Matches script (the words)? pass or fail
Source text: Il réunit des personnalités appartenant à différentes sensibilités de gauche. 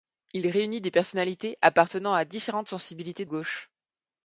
fail